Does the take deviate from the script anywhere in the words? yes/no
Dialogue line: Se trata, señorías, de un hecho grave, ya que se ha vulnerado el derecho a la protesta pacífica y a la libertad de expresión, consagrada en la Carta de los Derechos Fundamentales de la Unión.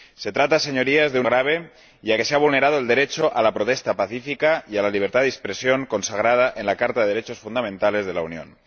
yes